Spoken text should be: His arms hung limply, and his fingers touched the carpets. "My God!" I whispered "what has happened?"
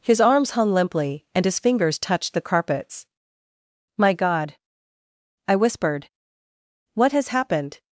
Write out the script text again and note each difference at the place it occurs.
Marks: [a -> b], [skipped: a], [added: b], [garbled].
His arms hung limply, and his fingers touched the carpets. "My God!" I whispered "what has happened?"